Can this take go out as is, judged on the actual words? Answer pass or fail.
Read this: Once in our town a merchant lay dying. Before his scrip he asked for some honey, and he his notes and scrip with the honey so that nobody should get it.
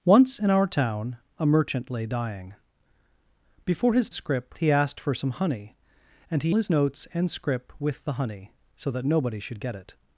pass